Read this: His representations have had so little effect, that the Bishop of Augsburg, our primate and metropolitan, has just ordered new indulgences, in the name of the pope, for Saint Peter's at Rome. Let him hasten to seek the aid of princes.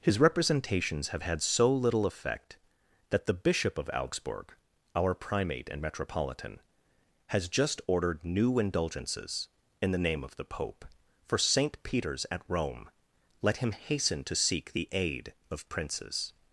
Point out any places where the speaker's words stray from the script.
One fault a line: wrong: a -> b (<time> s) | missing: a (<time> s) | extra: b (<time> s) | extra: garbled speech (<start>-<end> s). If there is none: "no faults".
no faults